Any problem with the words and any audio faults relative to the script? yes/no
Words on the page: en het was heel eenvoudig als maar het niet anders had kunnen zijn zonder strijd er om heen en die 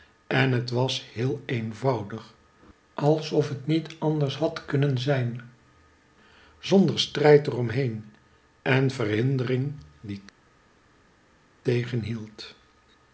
yes